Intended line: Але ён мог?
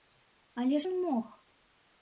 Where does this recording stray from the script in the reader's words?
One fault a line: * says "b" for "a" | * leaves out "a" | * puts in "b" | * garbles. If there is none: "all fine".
all fine